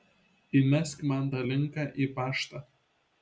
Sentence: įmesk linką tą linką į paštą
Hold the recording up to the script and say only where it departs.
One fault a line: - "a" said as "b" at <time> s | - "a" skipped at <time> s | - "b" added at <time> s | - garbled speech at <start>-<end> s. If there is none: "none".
- "linką" said as "man" at 1.1 s